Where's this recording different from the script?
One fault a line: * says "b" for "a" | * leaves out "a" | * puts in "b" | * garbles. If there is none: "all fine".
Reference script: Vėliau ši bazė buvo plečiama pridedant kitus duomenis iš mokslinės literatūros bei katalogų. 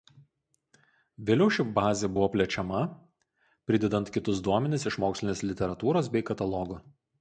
all fine